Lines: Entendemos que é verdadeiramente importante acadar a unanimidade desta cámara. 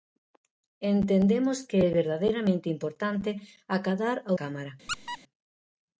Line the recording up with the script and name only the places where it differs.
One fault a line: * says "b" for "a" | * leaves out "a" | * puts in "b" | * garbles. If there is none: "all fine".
* leaves out "unanimidade desta"